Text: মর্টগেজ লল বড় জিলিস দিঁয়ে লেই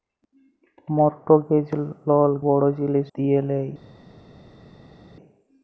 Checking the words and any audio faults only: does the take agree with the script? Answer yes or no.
yes